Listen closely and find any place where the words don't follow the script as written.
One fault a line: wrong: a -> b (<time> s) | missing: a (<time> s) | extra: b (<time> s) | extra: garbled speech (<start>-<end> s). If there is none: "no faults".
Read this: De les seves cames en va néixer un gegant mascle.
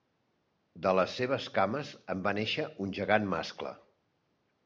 no faults